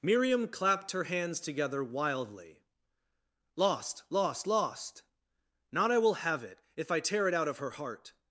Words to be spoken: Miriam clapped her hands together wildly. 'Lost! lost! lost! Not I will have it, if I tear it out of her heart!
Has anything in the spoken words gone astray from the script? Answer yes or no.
no